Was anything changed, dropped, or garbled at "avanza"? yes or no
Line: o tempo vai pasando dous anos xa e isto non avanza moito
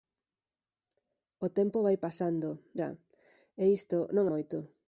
yes